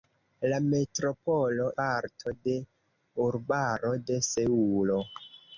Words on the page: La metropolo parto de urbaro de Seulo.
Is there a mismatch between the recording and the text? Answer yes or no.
no